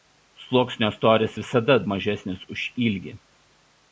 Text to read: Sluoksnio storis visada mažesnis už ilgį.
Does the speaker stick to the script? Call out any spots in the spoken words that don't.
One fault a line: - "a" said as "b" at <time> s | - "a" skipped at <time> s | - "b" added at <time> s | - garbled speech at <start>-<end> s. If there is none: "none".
none